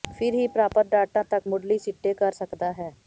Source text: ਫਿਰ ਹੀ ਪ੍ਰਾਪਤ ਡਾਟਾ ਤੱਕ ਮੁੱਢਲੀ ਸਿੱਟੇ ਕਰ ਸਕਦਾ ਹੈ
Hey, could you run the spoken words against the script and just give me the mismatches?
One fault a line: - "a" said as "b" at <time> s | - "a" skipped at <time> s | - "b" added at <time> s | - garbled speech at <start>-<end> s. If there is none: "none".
none